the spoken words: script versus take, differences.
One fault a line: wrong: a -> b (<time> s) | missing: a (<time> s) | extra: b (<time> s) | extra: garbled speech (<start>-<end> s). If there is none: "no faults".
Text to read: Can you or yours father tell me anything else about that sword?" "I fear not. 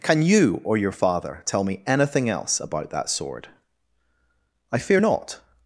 wrong: yours -> your (0.8 s)